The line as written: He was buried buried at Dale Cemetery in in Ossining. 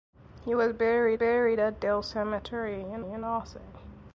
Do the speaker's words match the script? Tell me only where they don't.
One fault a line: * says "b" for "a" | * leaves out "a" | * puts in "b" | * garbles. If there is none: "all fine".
all fine